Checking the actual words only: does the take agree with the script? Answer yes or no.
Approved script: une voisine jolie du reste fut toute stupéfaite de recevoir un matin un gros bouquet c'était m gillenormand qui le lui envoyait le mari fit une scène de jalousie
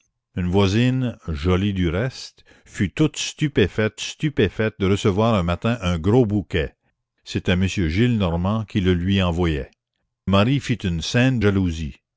no